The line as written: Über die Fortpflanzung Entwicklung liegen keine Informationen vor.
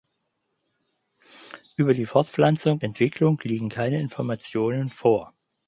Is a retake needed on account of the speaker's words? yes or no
no